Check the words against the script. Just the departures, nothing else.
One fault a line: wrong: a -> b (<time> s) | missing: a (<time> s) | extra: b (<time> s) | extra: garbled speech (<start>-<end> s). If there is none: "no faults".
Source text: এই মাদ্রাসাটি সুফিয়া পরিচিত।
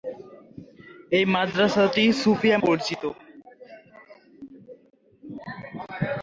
no faults